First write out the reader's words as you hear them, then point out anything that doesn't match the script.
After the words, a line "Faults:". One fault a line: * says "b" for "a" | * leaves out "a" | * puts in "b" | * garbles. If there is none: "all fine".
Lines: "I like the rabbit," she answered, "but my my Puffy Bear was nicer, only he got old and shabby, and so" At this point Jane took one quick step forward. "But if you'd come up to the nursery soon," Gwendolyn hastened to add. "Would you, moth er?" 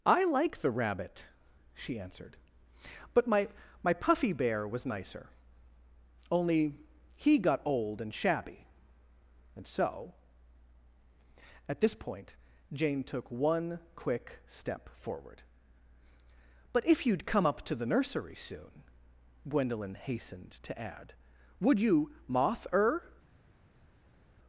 "I like the rabbit," she answered, "but my my Puffy Bear was nicer, only he got old and shabby, and so" At this point Jane took one quick step forward. "But if you'd come up to the nursery soon," Gwendolyn hastened to add. "Would you, moth er?"
Faults:
all fine